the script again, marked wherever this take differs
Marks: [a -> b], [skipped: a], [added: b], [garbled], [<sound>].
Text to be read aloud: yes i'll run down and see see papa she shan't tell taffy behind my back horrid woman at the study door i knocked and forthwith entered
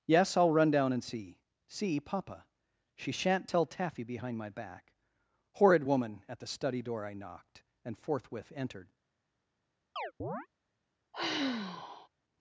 yes i'll run down and see see papa she shan't tell taffy behind my back horrid woman at the study door i knocked and forthwith entered [chirp] [sigh]